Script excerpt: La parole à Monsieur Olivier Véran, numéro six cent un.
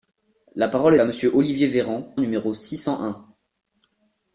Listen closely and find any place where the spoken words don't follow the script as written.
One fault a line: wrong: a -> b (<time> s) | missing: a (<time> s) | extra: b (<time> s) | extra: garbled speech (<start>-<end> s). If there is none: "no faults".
no faults